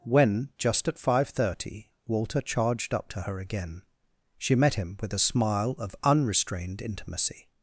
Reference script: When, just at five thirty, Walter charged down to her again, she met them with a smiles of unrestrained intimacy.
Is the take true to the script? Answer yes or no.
no